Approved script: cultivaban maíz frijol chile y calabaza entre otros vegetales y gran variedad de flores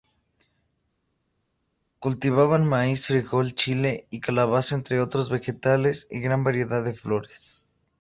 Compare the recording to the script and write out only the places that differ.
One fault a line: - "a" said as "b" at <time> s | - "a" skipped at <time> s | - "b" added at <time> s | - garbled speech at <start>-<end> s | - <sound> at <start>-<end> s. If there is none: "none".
none